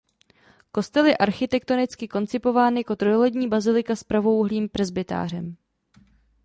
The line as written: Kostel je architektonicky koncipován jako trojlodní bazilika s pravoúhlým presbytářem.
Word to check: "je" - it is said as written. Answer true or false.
true